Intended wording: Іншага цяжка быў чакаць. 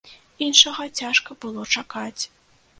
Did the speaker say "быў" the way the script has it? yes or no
no